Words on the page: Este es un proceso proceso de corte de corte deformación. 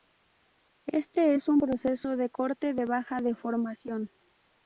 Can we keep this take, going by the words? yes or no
no